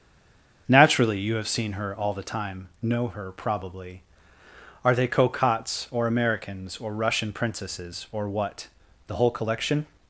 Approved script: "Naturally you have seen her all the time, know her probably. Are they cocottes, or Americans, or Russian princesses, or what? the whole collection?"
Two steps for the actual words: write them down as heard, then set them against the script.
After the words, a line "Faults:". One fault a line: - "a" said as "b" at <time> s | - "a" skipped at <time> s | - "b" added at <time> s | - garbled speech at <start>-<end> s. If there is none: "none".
"Naturally you have seen her all the time, know her probably. Are they cocottes, or Americans, or Russian princesses, or what? the whole collection?"
Faults:
none